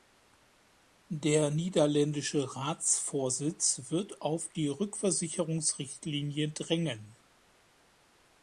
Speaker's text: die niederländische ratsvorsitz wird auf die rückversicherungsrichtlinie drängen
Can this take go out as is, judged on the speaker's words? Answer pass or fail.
fail